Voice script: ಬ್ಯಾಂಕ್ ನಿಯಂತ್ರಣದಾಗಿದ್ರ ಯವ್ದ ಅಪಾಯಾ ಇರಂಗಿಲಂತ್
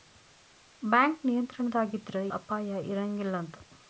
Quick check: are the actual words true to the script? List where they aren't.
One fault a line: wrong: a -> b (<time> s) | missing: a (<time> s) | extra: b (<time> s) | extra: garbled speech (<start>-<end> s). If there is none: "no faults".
missing: ಯವ್ದ (2.2 s)